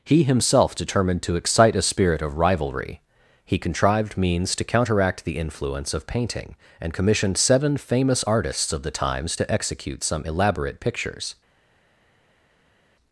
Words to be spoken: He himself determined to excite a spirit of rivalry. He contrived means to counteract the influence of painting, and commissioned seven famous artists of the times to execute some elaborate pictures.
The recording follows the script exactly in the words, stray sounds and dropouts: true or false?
true